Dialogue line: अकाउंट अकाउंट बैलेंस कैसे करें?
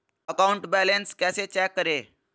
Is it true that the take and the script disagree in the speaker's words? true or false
true